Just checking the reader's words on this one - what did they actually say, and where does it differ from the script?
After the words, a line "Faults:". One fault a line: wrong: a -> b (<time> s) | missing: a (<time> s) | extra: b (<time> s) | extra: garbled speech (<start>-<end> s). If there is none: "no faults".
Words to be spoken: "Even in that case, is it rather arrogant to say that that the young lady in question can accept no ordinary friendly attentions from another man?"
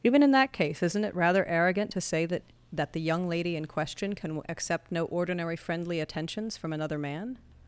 "Even in that case, isn't it rather arrogant to say that that the young lady in question can accept no ordinary friendly attentions from another man?"
Faults:
wrong: is -> isn't (0.8 s)